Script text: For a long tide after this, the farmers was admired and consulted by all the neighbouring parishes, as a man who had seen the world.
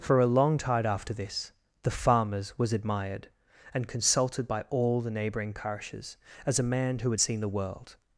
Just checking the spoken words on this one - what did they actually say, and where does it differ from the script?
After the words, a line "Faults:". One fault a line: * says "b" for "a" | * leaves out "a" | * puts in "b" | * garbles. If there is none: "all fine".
For a long tide after this, the farmers was admired and consulted by all the neighbouring parishes, as a man who had seen the world.
Faults:
all fine